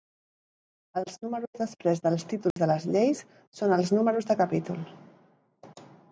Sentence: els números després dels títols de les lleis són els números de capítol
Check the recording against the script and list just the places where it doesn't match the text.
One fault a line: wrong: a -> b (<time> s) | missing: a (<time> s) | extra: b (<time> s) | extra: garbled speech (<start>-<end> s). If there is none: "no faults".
no faults